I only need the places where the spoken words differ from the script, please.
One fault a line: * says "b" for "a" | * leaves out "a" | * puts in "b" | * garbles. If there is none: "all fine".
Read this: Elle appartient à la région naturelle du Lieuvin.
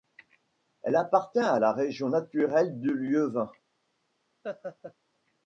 all fine